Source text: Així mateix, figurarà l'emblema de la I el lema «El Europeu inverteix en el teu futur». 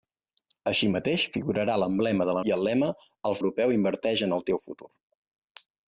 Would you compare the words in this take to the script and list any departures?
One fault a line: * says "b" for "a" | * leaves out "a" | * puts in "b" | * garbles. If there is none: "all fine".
all fine